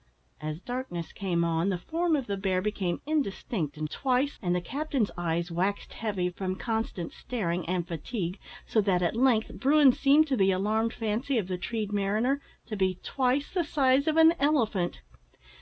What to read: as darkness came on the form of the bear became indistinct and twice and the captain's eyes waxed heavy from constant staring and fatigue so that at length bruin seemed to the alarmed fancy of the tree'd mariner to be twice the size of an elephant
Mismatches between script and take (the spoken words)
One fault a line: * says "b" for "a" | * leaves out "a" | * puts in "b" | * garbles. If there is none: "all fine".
all fine